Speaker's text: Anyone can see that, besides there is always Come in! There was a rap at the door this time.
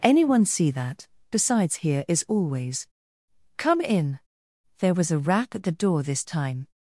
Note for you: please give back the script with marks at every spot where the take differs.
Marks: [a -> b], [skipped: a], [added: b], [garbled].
Anyone [skipped: can] see that, besides [there -> here] is always Come in! There was a rap at the door this time.